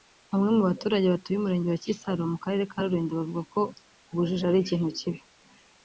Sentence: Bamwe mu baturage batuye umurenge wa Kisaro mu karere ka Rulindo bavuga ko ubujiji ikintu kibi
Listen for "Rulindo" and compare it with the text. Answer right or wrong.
right